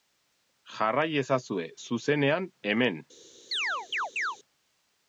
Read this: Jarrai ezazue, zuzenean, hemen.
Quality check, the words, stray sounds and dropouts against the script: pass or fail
fail